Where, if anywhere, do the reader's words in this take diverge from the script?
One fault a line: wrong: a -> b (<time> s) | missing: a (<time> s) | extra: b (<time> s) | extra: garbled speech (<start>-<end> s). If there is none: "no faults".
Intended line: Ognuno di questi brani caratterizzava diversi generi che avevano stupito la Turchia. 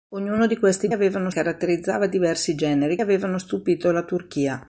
wrong: brani -> avevano (0.9 s)
missing: che (3.0 s)